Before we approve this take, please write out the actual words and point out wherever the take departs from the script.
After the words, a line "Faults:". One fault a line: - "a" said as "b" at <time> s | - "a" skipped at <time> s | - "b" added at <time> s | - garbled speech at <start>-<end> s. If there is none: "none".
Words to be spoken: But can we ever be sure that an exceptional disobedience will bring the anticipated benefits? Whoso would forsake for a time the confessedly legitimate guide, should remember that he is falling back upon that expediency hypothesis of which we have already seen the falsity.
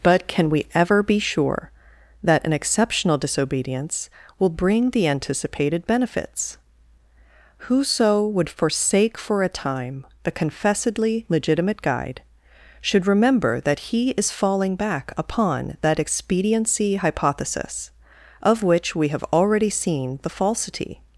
But can we ever be sure that an exceptional disobedience will bring the anticipated benefits? Whoso would forsake for a time the confessedly legitimate guide, should remember that he is falling back upon that expediency hypothesis of which we have already seen the falsity.
Faults:
none